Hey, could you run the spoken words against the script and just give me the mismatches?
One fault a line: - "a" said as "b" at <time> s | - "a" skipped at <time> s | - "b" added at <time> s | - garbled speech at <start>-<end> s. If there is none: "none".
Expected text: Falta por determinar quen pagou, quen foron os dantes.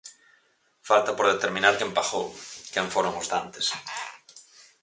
none